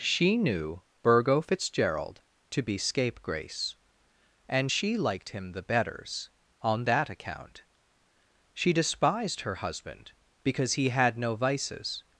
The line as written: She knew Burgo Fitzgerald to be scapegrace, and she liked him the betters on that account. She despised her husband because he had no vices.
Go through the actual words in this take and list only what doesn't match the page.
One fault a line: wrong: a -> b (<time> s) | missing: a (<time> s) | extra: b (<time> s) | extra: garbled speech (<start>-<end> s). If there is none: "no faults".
no faults